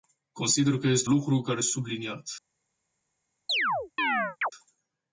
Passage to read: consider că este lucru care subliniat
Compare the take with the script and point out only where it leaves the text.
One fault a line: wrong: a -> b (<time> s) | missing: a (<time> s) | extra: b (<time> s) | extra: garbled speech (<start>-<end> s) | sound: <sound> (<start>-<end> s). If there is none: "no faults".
sound: chirp (3.5-4.5 s)